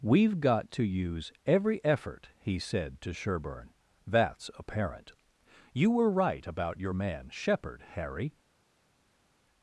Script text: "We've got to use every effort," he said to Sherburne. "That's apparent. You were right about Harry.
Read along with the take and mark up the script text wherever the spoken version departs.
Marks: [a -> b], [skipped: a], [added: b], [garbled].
"We've got to use every effort," he said to Sherburne. "That's apparent. You were right about [added: your man Shepard] Harry.